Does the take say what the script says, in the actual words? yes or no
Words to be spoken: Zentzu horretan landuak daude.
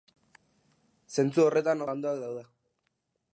yes